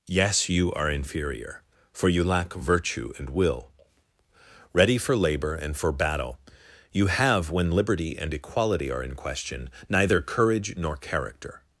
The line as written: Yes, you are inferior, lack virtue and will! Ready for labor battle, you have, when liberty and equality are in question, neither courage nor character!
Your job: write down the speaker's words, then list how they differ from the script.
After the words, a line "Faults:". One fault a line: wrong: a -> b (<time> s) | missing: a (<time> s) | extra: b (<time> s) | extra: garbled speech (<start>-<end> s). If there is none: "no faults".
Yes, you are inferior, for you lack virtue and will! Ready for labor and for battle, you have, when liberty and equality are in question, neither courage nor character!
Faults:
extra: for you (1.9 s)
extra: and for (5.5 s)